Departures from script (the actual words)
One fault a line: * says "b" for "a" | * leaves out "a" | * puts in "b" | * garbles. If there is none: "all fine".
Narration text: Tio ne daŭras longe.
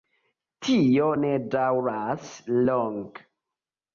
all fine